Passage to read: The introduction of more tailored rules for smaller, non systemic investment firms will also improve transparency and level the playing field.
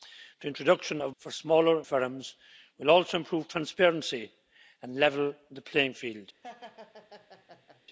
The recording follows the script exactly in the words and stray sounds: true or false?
false